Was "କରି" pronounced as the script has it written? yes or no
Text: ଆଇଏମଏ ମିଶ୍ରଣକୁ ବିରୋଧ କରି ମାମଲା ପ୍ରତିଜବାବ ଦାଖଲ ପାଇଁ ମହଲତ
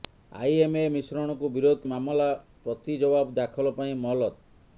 no